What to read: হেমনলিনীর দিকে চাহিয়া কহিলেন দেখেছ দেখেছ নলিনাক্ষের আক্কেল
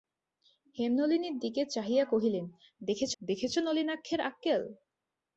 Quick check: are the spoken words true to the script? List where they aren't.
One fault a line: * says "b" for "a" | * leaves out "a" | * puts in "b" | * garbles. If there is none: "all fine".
all fine